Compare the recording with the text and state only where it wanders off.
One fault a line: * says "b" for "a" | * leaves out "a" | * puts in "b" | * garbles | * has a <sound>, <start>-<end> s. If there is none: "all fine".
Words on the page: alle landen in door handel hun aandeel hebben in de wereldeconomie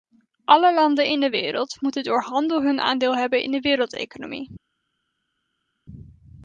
* puts in "de wereld moeten"